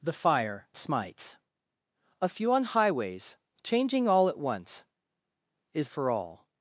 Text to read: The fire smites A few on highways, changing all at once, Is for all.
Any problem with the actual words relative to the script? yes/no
no